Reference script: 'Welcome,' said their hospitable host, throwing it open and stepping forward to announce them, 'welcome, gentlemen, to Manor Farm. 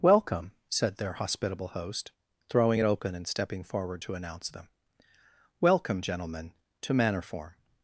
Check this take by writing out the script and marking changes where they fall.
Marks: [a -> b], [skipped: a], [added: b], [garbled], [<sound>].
'Welcome,' said their hospitable host, throwing it open and stepping forward to announce them, 'welcome, gentlemen, to Manor [Farm. -> Form]